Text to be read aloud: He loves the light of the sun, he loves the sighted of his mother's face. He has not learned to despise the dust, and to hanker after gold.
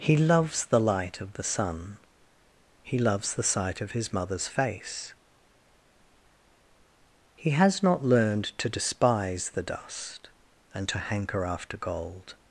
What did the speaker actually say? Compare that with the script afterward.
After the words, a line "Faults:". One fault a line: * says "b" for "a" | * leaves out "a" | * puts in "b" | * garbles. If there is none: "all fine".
He loves the light of the sun, he loves the sight of his mother's face. He has not learned to despise the dust, and to hanker after gold.
Faults:
* says "sight" for "sighted"